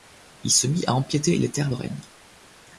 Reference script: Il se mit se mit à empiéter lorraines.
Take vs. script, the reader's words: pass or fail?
fail